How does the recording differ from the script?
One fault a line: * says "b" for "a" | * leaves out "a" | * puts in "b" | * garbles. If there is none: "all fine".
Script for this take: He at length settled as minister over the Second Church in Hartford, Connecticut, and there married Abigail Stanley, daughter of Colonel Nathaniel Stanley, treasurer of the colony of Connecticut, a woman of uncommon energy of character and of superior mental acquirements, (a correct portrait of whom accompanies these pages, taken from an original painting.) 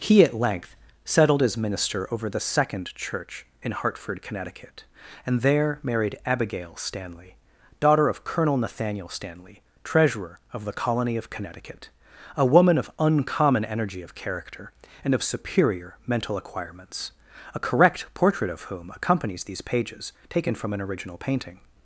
all fine